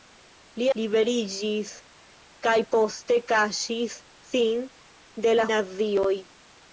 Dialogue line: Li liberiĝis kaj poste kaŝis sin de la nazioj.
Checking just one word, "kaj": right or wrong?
right